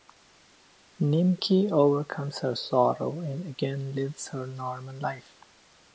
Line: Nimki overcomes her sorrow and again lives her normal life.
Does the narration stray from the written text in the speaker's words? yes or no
no